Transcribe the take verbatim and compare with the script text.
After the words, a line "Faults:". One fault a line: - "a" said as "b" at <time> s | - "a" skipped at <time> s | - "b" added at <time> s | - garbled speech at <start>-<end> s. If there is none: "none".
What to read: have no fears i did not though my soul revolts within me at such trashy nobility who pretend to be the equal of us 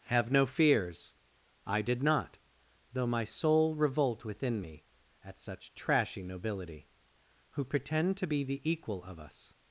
have no fears i did not though my soul revolt within me at such trashy nobility who pretend to be the equal of us
Faults:
- "revolts" said as "revolt" at 3.8 s